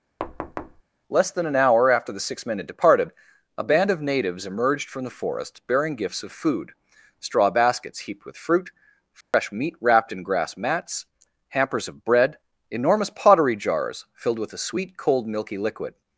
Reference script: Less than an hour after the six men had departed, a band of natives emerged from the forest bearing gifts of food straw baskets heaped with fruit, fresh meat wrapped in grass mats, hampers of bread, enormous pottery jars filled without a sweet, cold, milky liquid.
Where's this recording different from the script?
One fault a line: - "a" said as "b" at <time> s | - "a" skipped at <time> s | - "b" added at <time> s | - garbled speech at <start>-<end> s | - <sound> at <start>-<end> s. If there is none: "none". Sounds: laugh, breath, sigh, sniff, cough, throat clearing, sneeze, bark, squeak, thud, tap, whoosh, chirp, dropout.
- thud at 0.2-0.8 s
- dropout at 9.2-9.3 s
- "without" said as "with" at 14.4 s